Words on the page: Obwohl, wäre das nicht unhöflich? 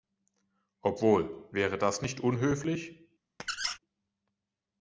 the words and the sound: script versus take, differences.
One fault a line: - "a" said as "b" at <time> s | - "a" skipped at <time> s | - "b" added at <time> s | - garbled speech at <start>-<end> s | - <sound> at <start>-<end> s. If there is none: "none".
- squeak at 3.4-3.8 s